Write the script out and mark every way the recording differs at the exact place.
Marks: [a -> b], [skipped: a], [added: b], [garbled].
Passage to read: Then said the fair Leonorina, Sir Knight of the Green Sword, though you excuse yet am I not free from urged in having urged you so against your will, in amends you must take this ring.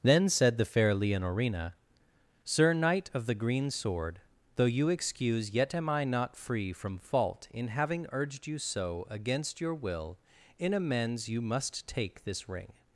Then said the fair Leonorina, Sir Knight of the Green Sword, though you excuse yet am I not free from [urged -> fault] in having urged you so against your will, in amends you must take this ring.